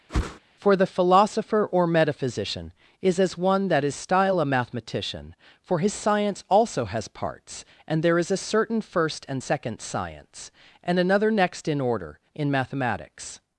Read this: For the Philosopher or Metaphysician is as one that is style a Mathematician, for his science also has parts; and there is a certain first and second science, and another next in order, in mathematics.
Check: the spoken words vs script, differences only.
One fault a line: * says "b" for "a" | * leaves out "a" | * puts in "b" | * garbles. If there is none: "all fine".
all fine